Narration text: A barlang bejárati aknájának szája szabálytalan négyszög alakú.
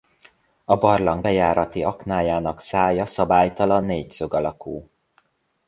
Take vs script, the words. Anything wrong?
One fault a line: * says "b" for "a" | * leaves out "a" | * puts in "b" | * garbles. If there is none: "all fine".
all fine